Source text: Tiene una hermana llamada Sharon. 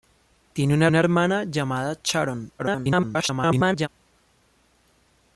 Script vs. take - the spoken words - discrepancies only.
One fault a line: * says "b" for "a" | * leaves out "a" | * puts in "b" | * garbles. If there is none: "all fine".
* puts in "una"
* garbles